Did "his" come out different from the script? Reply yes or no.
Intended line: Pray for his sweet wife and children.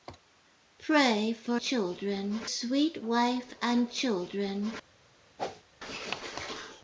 yes